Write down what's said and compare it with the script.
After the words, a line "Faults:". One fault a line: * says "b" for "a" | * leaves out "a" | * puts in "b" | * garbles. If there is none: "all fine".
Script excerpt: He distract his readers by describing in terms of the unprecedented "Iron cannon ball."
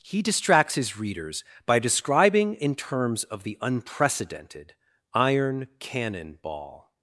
He distracts his readers by describing in terms of the unprecedented "Iron cannon ball."
Faults:
* says "distracts" for "distract"